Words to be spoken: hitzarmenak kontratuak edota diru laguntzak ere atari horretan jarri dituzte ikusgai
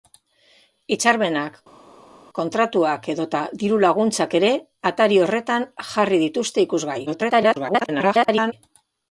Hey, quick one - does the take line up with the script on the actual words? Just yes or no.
no